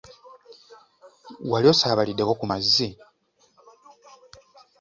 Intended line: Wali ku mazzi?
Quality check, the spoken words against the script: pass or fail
fail